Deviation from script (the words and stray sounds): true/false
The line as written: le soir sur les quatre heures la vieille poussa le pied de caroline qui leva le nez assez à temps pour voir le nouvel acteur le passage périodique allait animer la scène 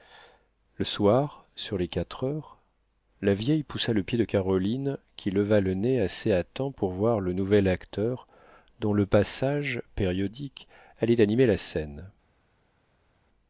true